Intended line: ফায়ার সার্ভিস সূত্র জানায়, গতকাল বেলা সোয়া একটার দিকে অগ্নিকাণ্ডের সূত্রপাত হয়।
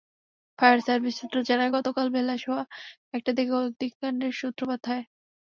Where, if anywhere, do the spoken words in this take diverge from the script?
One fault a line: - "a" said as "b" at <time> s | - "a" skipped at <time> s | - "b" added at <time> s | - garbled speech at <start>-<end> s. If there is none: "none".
none